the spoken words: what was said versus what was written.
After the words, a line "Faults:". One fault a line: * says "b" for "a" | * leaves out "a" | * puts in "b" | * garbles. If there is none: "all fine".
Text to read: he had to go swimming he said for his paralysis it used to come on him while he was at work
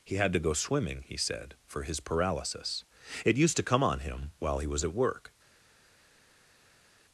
he had to go swimming he said for his paralysis it used to come on him while he was at work
Faults:
all fine